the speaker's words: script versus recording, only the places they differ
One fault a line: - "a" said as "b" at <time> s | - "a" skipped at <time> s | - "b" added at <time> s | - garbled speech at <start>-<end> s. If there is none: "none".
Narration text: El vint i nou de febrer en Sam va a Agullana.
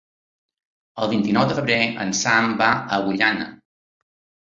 none